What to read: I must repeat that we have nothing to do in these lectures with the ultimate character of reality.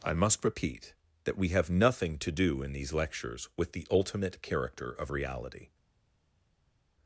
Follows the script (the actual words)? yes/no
yes